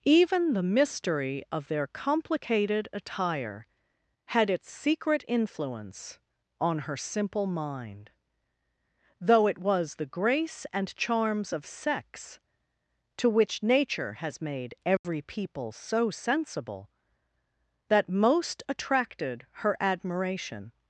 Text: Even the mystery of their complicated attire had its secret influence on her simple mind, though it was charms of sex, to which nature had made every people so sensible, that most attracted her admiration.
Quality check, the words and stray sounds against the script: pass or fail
fail